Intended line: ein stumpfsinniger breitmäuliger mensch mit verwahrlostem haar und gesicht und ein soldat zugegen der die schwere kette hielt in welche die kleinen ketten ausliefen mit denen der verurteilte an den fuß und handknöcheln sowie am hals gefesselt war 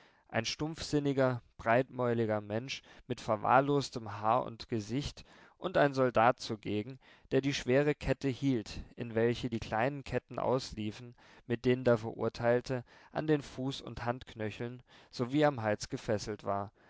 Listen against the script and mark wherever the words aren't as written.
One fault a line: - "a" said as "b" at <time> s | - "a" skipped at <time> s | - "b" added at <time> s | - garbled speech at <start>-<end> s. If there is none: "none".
none